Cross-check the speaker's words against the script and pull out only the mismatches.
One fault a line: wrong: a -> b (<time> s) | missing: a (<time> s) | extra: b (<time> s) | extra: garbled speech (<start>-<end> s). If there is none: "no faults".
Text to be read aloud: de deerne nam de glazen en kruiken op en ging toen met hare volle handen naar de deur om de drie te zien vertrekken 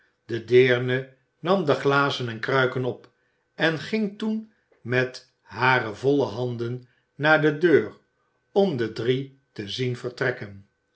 no faults